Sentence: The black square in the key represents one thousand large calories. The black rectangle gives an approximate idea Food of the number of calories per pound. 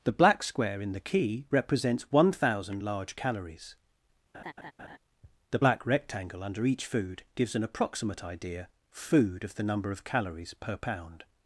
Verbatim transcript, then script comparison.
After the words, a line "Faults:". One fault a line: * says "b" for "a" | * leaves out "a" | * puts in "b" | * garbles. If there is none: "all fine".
The black square in the key represents one thousand large calories. The black rectangle under each food gives an approximate idea Food of the number of calories per pound.
Faults:
* puts in "under each food"